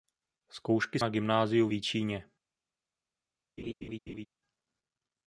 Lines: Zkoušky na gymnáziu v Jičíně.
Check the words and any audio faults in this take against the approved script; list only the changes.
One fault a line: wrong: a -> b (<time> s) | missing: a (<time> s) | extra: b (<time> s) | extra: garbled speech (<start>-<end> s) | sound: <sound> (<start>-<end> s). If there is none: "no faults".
sound: laugh (3.6-4.3 s)